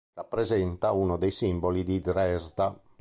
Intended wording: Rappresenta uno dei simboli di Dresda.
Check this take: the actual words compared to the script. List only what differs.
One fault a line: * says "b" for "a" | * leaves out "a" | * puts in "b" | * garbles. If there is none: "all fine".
all fine